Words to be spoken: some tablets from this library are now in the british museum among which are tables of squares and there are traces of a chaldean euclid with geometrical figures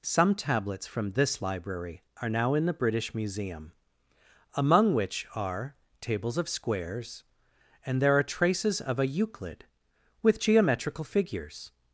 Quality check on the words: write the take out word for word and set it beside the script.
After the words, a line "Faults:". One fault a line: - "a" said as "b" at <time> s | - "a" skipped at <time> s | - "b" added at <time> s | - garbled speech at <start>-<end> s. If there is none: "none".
some tablets from this library are now in the british museum among which are tables of squares and there are traces of a euclid with geometrical figures
Faults:
- "chaldean" skipped at 9.1 s